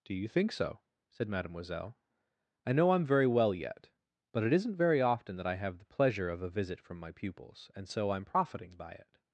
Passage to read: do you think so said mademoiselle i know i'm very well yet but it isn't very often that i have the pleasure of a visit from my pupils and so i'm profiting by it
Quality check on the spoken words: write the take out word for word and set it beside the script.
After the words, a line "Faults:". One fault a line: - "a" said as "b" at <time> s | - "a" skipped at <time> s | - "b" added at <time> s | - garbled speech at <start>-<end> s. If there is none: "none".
do you think so said mademoiselle i know i'm very well yet but it isn't very often that i have the pleasure of a visit from my pupils and so i'm profiting by it
Faults:
none